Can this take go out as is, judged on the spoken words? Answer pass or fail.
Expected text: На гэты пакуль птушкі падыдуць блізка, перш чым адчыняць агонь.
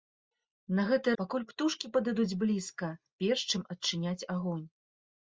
pass